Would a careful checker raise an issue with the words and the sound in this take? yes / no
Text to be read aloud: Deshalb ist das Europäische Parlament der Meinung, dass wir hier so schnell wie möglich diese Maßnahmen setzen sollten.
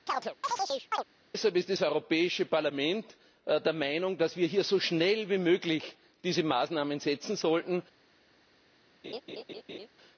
yes